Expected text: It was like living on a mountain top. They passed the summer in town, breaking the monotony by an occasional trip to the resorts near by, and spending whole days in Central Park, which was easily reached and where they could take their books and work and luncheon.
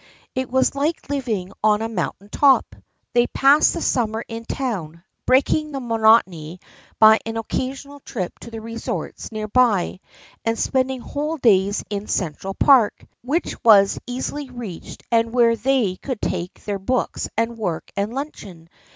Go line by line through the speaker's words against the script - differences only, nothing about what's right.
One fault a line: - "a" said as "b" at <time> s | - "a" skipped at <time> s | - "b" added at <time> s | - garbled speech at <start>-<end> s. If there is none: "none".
none